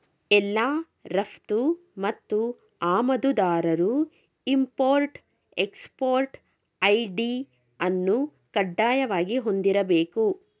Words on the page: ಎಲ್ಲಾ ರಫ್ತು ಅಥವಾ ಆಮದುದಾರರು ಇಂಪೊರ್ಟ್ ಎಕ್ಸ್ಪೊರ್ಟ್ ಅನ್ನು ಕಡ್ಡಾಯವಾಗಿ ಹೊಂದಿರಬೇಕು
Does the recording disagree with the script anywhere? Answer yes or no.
yes